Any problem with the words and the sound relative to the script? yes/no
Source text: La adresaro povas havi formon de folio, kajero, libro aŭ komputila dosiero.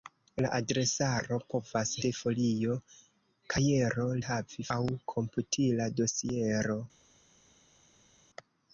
yes